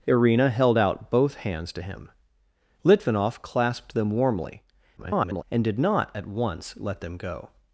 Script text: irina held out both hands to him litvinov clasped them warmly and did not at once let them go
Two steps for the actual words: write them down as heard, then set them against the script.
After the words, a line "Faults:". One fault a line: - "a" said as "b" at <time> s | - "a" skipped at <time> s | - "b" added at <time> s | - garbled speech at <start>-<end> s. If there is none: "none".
irina held out both hands to him litvinov clasped them warmly [garbled] and did not at once let them go
Faults:
- garbled speech at 5.0-5.4 s